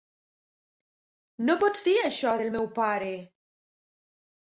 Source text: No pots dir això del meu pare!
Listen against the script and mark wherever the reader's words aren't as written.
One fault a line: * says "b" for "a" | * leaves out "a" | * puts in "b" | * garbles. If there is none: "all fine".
all fine